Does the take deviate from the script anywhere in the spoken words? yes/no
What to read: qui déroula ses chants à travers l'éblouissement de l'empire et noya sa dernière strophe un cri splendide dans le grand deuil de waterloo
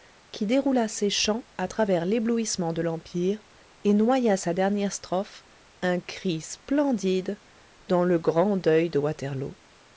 no